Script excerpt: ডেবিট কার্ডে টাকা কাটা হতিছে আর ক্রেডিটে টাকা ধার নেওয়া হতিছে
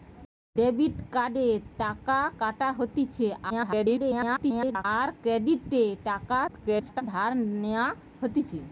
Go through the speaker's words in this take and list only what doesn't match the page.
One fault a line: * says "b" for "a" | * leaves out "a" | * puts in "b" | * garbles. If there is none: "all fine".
* garbles
* garbles